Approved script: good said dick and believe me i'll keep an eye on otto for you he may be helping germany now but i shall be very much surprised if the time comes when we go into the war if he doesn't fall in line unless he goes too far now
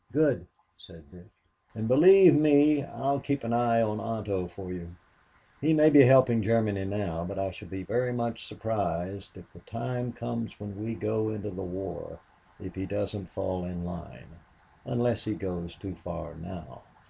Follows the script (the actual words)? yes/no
yes